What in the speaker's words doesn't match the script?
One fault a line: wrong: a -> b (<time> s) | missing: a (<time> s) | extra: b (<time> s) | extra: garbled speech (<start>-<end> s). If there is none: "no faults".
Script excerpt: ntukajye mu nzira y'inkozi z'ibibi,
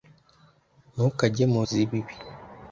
missing: nzira y'inkozi (1.6 s)